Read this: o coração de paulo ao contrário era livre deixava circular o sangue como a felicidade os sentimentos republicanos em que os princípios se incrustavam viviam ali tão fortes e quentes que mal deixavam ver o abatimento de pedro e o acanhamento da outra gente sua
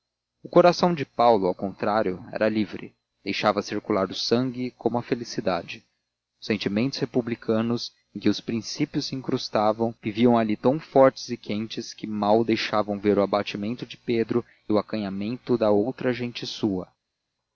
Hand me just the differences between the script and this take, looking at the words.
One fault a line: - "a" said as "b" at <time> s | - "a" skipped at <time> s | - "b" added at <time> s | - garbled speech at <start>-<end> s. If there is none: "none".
none